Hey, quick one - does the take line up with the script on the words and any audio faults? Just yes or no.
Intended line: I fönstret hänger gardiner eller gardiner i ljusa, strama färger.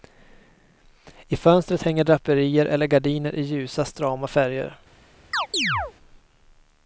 no